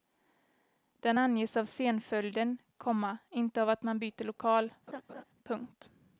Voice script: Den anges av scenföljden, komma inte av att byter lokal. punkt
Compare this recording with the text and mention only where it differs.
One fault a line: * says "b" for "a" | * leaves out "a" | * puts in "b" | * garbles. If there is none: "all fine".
* puts in "man"